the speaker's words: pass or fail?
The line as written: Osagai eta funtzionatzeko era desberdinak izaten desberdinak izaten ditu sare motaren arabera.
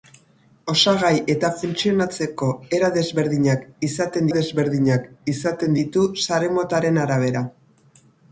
pass